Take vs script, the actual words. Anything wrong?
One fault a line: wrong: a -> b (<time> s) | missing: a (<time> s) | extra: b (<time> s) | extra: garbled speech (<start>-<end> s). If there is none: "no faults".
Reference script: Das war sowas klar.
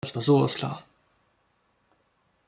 no faults